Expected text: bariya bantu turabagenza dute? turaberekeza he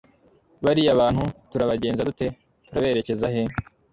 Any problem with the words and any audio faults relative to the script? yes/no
no